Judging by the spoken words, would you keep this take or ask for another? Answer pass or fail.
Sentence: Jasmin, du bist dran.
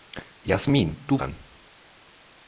fail